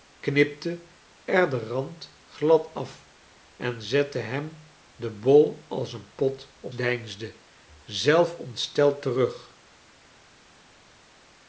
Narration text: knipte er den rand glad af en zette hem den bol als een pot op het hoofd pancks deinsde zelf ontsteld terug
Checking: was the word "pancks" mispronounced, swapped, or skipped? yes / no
yes